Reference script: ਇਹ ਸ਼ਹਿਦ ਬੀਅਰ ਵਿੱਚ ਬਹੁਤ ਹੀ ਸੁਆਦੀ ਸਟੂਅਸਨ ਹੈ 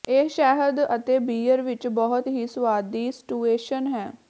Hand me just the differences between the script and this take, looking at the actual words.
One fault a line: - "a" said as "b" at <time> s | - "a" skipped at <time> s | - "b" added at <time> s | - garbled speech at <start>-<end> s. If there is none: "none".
- "ਅਤੇ" added at 0.9 s